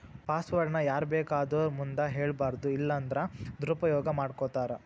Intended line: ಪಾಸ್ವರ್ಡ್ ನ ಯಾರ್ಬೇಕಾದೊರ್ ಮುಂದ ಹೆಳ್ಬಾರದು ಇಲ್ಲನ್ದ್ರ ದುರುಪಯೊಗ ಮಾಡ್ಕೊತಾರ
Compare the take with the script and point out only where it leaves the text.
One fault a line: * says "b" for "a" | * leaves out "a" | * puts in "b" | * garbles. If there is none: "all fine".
all fine